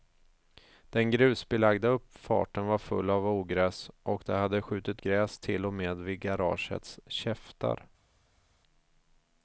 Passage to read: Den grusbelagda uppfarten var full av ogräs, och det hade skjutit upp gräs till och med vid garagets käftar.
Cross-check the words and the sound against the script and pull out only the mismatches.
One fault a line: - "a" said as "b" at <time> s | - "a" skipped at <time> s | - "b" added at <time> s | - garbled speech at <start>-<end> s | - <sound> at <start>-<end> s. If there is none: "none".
- "upp" skipped at 5.0 s